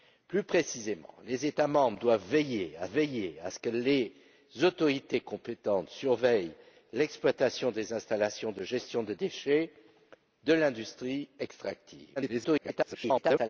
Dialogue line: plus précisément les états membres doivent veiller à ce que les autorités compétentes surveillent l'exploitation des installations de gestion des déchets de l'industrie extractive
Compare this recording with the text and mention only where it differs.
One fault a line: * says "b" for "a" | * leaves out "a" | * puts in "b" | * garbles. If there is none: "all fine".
* puts in "veiller à"
* garbles